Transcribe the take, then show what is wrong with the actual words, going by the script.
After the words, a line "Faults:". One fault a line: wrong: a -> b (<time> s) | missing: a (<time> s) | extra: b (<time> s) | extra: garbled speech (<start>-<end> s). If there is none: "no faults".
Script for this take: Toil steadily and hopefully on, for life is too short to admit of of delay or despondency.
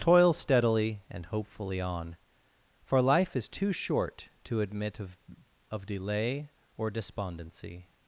Toil steadily and hopefully on, for life is too short to admit of of delay or despondency.
Faults:
no faults